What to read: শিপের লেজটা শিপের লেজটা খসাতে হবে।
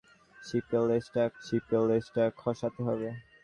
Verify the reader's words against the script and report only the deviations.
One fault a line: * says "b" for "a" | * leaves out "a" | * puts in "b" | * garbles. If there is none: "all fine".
all fine